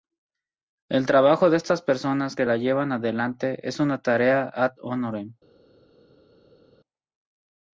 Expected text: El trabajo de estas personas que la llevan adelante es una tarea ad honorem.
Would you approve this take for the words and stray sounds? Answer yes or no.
yes